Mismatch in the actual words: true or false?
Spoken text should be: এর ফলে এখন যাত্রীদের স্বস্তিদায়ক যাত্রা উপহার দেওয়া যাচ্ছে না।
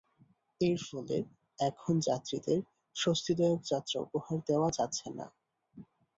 false